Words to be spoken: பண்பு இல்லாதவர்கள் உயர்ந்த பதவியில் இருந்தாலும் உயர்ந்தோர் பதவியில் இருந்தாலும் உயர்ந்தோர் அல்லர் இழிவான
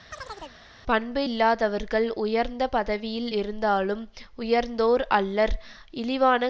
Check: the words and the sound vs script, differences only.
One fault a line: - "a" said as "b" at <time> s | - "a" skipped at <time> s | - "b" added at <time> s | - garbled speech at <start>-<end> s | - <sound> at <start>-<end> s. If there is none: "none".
- chirp at 0.1-0.6 s
- "பதவியில் இருந்தாலும் உயர்ந்தோர்" skipped at 5.0 s